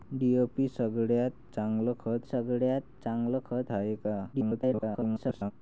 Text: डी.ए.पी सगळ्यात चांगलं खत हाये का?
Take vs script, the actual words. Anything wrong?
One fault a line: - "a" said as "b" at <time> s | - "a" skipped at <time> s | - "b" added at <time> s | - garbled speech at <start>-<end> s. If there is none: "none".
- "सगळ्यात चांगलं खत" added at 2.2 s
- garbled speech at 4.3-5.5 s